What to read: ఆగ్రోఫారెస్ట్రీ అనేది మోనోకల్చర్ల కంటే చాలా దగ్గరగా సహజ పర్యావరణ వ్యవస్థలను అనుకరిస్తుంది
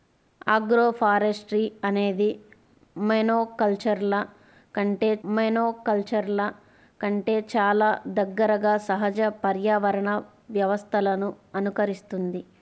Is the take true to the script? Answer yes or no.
no